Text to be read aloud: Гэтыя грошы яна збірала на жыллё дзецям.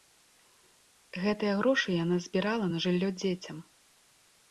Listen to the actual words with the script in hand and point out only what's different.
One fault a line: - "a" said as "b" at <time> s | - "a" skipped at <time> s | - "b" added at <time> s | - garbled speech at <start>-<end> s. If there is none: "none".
none